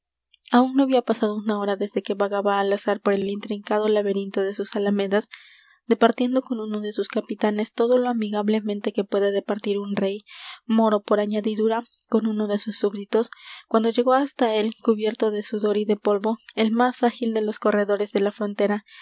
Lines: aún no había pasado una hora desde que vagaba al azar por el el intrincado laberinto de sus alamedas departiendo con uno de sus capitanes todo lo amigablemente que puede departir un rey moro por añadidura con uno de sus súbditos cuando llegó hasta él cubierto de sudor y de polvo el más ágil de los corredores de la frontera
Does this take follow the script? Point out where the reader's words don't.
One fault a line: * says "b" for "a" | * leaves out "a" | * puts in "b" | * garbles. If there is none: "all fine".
all fine